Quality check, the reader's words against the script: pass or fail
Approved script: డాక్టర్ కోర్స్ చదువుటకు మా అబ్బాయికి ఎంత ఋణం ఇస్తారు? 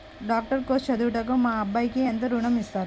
pass